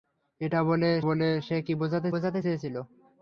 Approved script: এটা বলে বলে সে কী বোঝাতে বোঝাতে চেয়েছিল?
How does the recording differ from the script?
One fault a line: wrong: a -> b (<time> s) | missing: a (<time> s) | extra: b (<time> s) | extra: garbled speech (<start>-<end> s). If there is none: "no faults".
no faults